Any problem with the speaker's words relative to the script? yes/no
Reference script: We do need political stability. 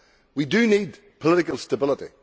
no